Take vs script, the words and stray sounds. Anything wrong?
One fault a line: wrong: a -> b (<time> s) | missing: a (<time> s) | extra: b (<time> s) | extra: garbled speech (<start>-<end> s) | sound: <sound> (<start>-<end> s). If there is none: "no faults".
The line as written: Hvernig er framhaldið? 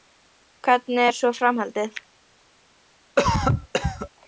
extra: svo (1.2 s)
sound: cough (3.2-4.1 s)